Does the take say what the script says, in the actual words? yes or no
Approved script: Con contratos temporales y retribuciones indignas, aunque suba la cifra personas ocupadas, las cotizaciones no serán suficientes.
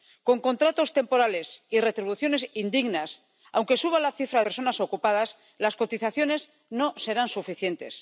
yes